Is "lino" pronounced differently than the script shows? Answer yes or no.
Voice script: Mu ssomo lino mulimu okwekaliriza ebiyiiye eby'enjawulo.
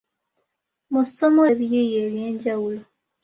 yes